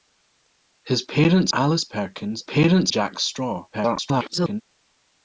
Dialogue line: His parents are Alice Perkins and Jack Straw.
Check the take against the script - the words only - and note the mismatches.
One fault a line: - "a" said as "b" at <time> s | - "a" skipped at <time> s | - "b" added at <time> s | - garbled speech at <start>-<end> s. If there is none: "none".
- "are" skipped at 1.5 s
- "and" said as "parents" at 2.4 s
- garbled speech at 3.7-4.6 s